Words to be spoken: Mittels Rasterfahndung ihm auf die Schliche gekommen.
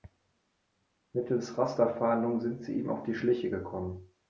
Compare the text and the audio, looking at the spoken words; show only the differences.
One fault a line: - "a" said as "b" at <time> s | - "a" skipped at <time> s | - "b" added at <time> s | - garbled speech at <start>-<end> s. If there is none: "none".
- "sind sie" added at 2.4 s